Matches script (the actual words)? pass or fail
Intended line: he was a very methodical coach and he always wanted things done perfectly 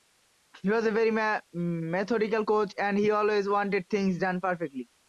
pass